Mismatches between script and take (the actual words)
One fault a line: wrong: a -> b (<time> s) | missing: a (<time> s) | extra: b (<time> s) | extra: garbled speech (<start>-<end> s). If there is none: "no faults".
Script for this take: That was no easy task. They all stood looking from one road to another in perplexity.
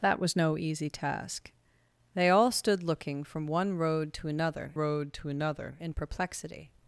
extra: road to another (4.7 s)